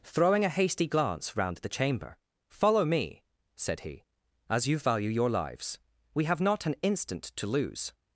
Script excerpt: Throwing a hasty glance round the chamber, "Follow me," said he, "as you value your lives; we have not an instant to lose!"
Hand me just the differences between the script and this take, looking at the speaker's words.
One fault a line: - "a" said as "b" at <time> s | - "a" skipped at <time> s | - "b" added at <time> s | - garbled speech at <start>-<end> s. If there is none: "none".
none